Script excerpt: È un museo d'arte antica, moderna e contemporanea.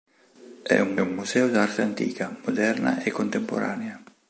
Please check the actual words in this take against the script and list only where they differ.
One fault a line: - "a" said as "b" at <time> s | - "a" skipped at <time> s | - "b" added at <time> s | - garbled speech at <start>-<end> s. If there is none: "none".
- "un" added at 1.0 s